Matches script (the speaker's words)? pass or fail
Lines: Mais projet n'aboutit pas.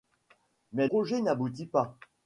pass